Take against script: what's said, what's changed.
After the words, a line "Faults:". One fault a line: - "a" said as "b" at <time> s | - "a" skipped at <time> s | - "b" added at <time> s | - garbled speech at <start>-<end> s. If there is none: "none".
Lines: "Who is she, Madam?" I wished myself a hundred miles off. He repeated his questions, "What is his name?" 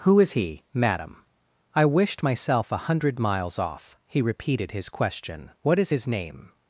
"Who is he, Madam?" I wished myself a hundred miles off. He repeated his question, "What is his name?"
Faults:
- "she" said as "he" at 0.3 s
- "questions" said as "question" at 4.9 s